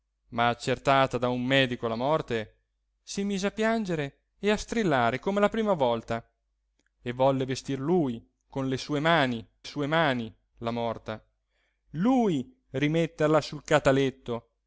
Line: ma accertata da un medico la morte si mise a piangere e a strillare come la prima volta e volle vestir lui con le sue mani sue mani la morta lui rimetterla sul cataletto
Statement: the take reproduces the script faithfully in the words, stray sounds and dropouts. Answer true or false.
true